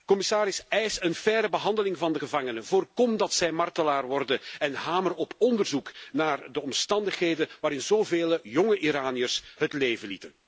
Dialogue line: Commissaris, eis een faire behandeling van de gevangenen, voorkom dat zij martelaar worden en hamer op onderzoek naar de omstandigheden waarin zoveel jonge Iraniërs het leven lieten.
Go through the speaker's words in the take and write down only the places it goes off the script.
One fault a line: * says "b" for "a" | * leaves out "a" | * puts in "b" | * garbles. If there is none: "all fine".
all fine